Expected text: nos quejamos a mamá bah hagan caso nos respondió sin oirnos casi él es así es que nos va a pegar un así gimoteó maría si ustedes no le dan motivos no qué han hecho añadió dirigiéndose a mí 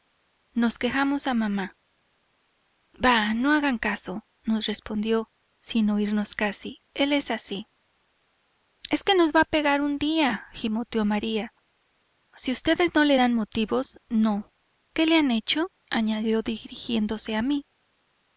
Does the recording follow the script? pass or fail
fail